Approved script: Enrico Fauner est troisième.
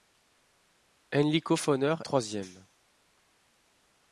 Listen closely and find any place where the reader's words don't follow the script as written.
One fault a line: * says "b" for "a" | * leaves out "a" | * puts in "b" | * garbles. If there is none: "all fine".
* leaves out "est"